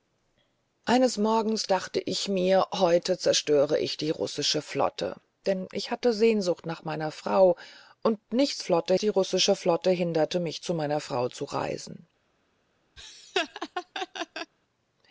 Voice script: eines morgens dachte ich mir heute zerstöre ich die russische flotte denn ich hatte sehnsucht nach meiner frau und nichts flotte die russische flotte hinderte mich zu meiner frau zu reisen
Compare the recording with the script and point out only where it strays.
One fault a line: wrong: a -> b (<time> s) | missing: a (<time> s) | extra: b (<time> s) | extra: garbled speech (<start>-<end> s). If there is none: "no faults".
no faults